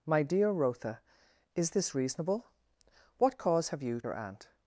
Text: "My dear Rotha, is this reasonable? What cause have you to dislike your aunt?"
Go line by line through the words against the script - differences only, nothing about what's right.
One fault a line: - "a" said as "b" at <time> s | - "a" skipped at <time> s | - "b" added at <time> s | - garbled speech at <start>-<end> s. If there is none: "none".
- "to dislike" skipped at 4.0 s